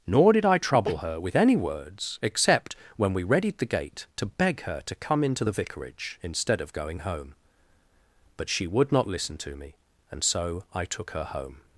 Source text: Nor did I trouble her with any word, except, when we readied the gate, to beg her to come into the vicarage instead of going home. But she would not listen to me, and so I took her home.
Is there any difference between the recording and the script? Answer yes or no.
yes